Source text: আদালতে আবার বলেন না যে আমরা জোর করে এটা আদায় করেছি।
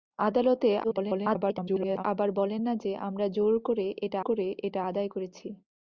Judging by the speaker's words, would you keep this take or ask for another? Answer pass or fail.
fail